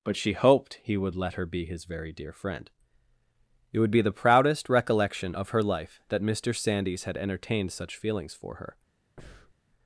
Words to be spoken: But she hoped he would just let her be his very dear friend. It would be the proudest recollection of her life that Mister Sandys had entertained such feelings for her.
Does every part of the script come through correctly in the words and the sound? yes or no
no